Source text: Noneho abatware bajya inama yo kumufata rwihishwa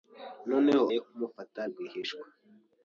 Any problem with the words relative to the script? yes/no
yes